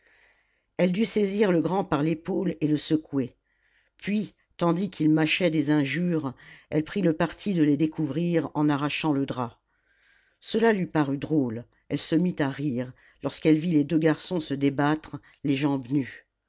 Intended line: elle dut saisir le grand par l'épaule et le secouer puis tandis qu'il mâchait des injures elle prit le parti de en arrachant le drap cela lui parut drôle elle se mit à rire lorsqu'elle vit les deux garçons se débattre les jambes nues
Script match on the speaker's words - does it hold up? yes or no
no